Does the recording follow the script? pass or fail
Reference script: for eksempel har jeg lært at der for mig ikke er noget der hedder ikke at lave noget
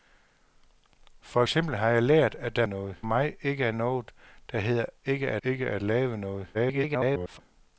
fail